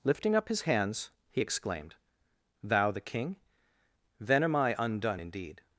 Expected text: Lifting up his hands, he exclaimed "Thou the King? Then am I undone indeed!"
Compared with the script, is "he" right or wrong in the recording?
right